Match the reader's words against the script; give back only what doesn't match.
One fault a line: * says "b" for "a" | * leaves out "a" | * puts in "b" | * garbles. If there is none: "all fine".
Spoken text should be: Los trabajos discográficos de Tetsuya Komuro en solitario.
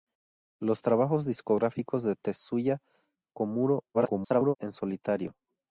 * garbles